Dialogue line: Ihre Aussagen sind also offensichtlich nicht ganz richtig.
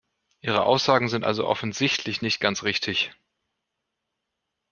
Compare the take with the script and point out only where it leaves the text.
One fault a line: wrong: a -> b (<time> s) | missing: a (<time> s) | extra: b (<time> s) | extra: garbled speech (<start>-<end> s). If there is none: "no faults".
no faults